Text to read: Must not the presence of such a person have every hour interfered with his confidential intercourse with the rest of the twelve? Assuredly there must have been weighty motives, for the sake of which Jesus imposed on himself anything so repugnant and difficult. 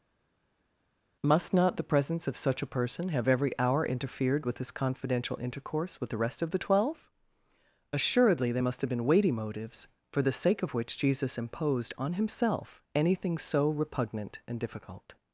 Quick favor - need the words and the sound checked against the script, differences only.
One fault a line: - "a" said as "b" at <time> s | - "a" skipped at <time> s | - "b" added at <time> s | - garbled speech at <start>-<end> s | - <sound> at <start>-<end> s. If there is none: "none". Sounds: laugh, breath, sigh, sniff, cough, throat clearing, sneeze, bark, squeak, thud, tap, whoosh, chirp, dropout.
none